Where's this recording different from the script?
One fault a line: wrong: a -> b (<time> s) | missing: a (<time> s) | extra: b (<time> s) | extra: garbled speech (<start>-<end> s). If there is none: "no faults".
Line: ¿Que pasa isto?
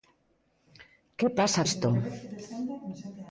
no faults